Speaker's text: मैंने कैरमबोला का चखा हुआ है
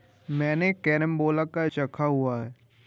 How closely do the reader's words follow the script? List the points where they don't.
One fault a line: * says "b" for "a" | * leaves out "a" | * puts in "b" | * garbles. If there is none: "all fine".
all fine